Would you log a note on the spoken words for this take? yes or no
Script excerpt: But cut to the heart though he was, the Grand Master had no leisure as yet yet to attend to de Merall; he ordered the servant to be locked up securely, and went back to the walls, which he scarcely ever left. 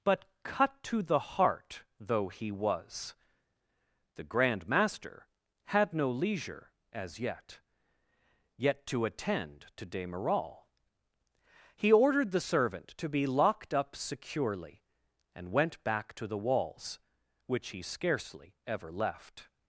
no